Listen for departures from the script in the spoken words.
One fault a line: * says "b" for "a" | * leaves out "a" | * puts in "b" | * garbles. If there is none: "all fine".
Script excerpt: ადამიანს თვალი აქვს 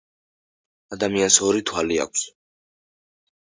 * puts in "ორი"